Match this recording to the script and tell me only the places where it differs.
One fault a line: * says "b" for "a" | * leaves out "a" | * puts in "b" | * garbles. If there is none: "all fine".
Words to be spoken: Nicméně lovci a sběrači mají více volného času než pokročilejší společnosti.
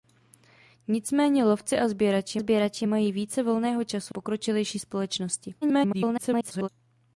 * puts in "sběrači"
* leaves out "než"
* garbles